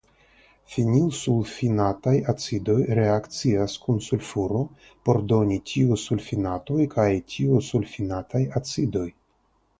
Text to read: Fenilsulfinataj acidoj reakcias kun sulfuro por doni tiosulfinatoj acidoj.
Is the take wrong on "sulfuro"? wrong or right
right